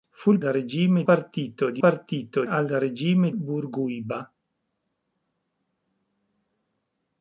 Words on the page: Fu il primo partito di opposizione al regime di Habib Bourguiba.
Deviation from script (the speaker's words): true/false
true